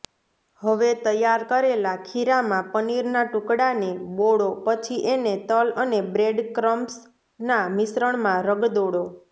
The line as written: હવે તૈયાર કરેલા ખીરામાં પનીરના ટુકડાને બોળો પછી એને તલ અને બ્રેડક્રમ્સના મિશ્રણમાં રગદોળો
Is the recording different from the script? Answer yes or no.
no